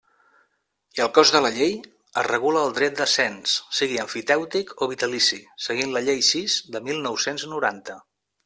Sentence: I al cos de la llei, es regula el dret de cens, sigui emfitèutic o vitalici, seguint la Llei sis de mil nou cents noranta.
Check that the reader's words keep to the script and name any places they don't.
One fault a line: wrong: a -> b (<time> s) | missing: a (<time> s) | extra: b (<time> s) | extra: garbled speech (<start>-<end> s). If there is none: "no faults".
no faults